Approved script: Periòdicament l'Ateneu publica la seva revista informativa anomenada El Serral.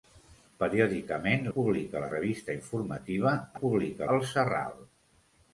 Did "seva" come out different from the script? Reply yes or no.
yes